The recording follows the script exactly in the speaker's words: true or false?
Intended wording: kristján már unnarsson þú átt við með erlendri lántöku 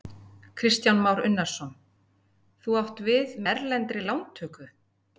false